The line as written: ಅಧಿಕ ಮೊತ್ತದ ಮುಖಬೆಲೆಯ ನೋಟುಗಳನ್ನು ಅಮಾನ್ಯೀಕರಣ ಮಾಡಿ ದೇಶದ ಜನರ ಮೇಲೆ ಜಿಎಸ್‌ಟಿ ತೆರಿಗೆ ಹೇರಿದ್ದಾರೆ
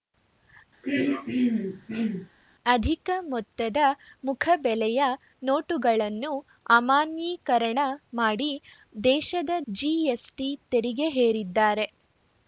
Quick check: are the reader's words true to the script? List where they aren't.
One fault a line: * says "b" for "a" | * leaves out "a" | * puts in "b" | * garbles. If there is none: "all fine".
* leaves out "ಜನರ ಮೇಲೆ"